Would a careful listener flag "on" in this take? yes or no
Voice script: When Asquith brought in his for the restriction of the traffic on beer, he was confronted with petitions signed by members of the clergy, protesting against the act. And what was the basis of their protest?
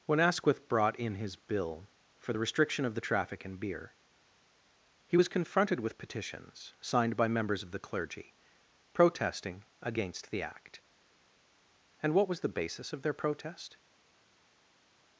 yes